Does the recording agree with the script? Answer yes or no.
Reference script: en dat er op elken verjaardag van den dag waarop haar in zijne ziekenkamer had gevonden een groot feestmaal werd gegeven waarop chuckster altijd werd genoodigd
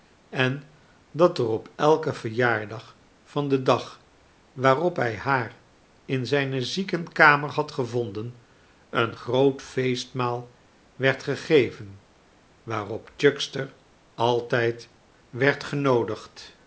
no